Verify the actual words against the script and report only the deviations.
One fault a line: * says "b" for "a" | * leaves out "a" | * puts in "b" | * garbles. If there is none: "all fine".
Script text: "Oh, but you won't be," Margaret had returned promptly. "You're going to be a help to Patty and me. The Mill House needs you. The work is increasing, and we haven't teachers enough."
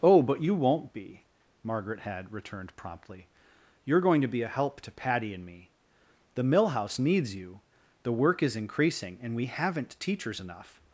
all fine